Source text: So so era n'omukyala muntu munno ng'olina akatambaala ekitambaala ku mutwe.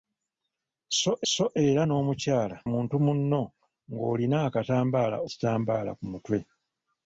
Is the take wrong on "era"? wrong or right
right